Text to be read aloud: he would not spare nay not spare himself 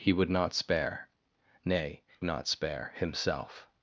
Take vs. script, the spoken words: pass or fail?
pass